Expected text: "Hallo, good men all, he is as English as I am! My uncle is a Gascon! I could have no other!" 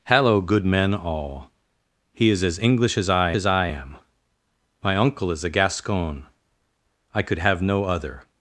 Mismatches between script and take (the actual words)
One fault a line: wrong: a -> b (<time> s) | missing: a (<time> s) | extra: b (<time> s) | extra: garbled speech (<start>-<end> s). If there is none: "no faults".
extra: as I (3.3 s)